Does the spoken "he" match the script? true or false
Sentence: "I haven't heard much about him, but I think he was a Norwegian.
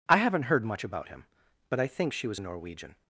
false